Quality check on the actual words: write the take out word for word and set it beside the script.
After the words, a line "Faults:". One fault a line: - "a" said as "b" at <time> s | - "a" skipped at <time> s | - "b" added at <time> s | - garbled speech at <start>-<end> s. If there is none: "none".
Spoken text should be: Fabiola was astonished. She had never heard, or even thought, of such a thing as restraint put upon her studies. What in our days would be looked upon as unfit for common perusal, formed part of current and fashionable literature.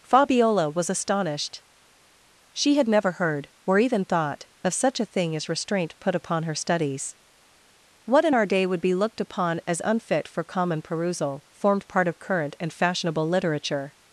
Fabiola was astonished. She had never heard, or even thought, of such a thing as restraint put upon her studies. What in our day would be looked upon as unfit for common perusal, formed part of current and fashionable literature.
Faults:
- "days" said as "day" at 8.5 s